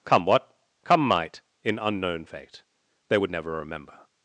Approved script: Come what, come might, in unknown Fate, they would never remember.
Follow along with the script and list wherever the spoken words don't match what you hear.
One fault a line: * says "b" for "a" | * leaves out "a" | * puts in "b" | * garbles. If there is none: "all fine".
all fine